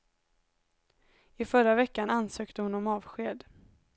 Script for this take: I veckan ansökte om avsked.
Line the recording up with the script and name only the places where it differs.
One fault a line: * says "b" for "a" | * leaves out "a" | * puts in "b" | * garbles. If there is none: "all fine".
* puts in "förra"
* puts in "hon"